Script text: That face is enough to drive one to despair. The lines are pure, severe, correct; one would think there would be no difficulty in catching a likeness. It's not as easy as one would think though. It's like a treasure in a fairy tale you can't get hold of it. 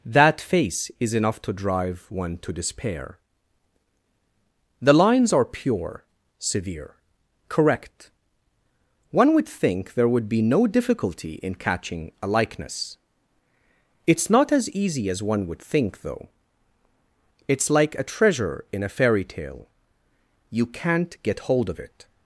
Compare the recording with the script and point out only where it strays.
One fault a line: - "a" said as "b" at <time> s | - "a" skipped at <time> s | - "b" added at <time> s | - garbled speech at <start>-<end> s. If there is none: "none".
none